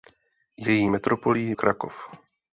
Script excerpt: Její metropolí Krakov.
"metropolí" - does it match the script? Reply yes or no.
yes